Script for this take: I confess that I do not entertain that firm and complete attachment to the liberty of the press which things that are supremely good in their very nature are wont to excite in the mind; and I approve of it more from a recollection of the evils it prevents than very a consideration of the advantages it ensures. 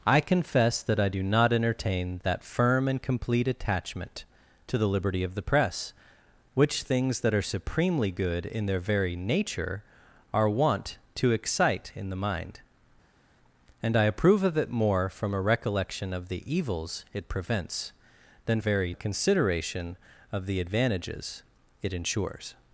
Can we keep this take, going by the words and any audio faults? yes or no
yes